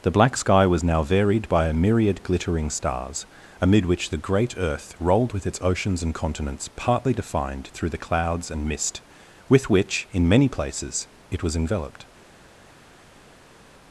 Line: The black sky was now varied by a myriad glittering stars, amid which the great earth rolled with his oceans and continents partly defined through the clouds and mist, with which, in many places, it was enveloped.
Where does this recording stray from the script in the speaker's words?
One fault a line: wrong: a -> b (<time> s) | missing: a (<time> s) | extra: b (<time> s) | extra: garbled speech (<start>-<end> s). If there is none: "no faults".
wrong: his -> its (5.5 s)